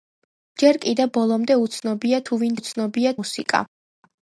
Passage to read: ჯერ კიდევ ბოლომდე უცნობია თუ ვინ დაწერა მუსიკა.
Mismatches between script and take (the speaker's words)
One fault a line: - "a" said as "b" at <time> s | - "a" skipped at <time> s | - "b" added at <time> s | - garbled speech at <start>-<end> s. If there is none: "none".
- "დაწერა" said as "უცნობია" at 2.6 s